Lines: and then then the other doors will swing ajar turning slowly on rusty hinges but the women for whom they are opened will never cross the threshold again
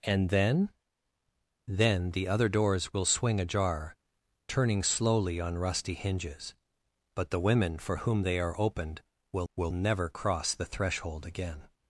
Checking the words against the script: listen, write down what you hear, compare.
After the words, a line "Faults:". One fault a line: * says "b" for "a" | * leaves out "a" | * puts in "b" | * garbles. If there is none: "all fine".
and then then the other doors will swing ajar turning slowly on rusty hinges but the women for whom they are opened will will never cross the threshold again
Faults:
* puts in "will"